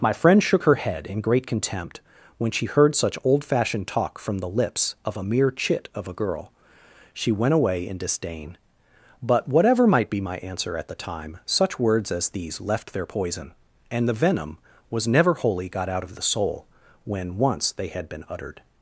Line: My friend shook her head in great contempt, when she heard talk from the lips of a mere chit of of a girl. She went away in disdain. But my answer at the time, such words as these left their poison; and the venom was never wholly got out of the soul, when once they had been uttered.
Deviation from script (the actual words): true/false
true